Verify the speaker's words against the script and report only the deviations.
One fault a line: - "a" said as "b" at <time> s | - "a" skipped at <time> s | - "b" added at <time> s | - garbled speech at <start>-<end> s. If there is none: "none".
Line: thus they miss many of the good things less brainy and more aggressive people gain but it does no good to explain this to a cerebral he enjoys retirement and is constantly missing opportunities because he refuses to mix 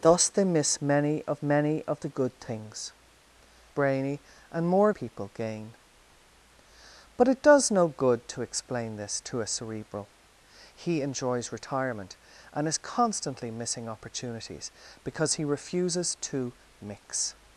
- "many of" added at 1.4 s
- "less" skipped at 2.9 s
- "aggressive" skipped at 4.9 s